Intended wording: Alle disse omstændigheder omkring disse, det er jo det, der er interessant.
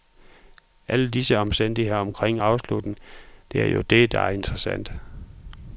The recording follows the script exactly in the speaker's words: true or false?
false